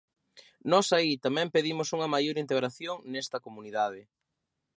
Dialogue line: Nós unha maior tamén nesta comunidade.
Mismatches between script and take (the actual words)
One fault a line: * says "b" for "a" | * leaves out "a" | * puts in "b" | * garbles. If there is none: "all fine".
* puts in "aí tamén pedimos"
* says "integración" for "tamén"